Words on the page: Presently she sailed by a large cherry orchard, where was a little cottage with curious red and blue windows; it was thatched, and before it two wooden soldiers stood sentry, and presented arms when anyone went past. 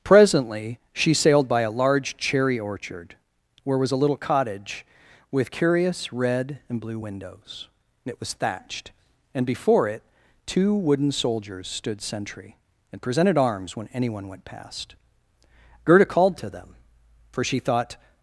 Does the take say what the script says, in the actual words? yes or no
no